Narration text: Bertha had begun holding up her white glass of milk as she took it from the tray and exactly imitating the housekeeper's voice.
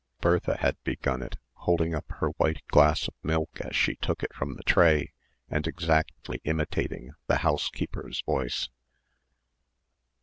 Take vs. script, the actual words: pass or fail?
fail